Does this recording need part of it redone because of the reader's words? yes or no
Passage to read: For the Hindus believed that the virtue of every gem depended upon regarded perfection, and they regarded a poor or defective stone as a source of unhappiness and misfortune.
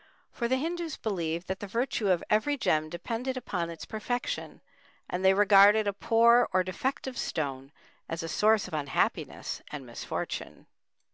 yes